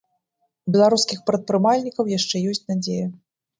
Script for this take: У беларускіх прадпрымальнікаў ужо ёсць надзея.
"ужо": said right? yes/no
no